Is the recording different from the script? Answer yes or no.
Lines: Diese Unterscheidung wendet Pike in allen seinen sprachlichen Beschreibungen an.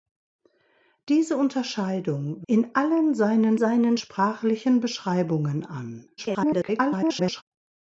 yes